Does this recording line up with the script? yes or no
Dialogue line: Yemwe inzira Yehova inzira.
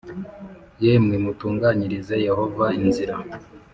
no